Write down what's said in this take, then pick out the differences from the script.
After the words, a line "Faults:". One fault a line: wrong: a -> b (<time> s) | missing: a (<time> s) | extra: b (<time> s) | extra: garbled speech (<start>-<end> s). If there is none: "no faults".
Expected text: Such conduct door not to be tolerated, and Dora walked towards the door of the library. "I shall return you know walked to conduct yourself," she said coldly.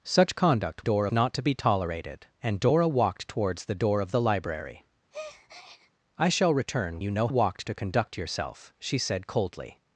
Such conduct door not to be tolerated, and Dora walked towards the door of the library. "I shall return you know walked to conduct yourself," she said coldly.
Faults:
no faults